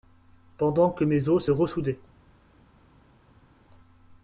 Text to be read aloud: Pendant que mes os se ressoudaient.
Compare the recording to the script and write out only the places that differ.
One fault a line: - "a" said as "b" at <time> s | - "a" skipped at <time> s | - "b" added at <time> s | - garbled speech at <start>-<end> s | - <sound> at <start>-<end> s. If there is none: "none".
none